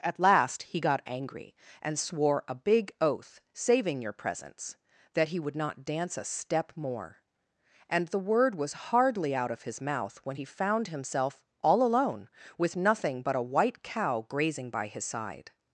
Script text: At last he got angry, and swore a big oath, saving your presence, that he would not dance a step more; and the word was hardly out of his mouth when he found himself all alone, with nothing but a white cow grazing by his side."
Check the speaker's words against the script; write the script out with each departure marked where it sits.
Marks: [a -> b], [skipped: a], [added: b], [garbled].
At last he got angry, and swore a big oath, saving your presence, that he would not dance a step more; and the word was hardly out of his mouth when he found himself all alone, with nothing but a white cow grazing by his side."